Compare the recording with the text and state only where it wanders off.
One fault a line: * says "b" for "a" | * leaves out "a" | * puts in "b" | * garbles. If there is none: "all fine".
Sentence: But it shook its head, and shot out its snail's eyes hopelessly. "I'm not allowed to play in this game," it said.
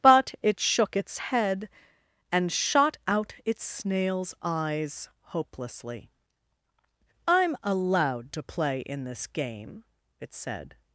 * leaves out "not"